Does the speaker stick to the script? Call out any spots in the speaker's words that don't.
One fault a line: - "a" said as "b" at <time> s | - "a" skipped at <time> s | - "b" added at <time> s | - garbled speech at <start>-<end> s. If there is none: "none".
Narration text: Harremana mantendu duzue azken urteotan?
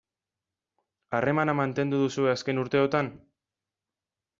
none